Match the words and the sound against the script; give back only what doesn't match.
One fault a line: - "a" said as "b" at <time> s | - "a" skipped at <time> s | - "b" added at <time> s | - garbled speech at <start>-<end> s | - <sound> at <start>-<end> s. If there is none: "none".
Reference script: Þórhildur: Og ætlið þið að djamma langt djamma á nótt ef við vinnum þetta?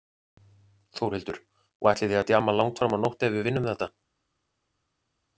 - "djamma" said as "fram" at 2.8 s